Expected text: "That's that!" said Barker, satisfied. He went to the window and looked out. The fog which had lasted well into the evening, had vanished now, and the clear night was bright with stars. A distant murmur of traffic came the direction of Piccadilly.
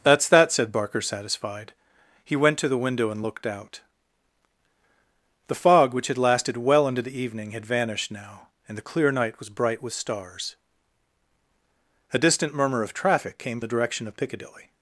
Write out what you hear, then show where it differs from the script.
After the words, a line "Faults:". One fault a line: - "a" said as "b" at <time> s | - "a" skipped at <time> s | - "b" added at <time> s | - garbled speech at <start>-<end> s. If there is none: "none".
"That's that!" said Barker, satisfied. He went to the window and looked out. The fog which had lasted well into the evening, had vanished now, and the clear night was bright with stars. A distant murmur of traffic came the direction of Piccadilly.
Faults:
none